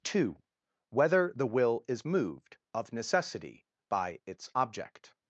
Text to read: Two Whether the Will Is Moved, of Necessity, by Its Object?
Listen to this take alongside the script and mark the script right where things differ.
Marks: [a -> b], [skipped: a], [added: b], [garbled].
Two Whether the Will Is Moved, of Necessity, by Its Object?